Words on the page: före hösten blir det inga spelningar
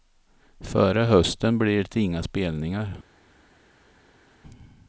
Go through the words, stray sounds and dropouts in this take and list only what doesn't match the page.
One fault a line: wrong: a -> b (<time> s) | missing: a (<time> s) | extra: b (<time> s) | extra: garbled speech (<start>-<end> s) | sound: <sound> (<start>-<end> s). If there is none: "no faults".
no faults